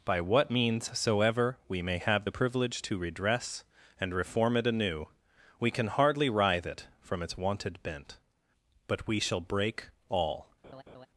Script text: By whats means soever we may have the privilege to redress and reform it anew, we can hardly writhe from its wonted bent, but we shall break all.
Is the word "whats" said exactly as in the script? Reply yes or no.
no